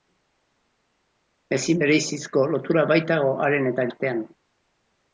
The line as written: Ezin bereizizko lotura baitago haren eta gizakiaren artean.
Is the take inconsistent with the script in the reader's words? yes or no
yes